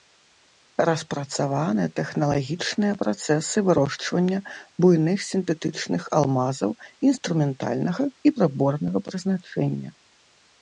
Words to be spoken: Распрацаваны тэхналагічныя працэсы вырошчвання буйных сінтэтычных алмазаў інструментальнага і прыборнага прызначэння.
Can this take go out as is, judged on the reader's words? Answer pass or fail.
pass